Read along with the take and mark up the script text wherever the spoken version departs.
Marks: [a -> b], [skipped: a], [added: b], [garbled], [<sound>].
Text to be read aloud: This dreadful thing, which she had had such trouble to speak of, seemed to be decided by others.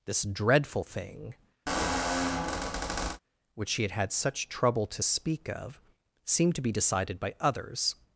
This dreadful thing, [squeak] which she had had such trouble to speak of, seemed to be decided by others.